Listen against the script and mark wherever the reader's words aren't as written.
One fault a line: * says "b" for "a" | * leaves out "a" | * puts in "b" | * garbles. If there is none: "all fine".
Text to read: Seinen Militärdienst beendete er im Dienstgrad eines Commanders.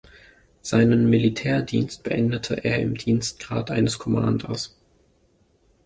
all fine